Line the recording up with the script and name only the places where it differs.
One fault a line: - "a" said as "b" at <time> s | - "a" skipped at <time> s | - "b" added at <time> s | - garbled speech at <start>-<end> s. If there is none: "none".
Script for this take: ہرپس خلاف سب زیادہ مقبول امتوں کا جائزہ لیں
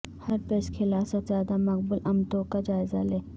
none